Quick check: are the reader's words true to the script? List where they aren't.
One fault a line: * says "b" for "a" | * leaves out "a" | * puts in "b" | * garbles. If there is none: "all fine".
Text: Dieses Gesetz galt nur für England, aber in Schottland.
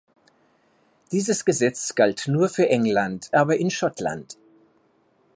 all fine